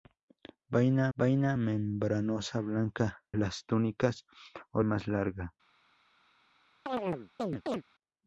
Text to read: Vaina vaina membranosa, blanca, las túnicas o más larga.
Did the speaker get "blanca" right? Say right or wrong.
right